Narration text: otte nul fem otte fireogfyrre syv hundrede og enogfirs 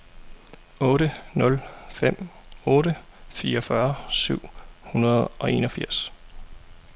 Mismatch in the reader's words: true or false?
false